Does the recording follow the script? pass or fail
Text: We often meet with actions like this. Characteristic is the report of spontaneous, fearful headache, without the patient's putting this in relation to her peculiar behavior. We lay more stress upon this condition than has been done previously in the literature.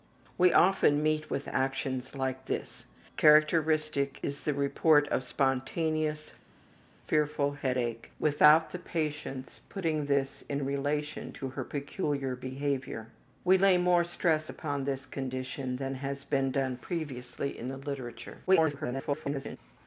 fail